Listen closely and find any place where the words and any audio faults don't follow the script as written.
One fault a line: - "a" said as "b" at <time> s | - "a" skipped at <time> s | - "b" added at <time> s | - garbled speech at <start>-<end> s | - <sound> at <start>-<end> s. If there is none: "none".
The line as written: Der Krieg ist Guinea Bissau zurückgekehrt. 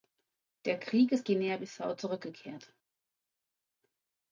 none